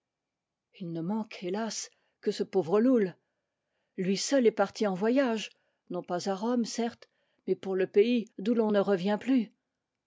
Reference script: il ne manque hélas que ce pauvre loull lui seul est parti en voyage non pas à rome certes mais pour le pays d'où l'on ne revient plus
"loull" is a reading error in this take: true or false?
false